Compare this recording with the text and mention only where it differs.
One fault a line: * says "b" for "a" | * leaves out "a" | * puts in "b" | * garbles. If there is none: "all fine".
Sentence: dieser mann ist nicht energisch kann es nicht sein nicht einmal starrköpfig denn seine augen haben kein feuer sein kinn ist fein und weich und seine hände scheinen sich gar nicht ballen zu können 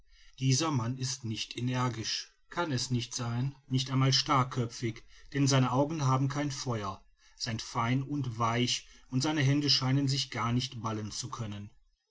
* leaves out "kinn ist"